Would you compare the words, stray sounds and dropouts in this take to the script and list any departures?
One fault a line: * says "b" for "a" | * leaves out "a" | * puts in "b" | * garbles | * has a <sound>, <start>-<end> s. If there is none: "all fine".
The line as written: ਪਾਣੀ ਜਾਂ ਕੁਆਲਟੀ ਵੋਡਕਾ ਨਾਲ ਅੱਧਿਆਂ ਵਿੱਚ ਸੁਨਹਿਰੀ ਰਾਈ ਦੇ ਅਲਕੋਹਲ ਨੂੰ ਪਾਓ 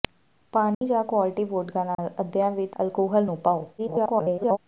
* has a dropout, 0.7-0.8 s
* has a dropout, 1.9-2.0 s
* leaves out "ਸੁਨਹਿਰੀ ਰਾਈ ਦੇ"
* garbles